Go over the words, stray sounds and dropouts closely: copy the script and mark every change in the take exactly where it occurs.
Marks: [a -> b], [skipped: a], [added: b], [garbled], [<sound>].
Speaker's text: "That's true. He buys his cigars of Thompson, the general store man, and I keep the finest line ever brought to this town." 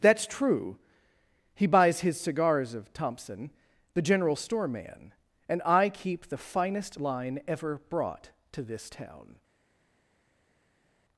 "That's true. He buys his cigars of Thompson, the general store man, and I keep the finest line ever brought to this town."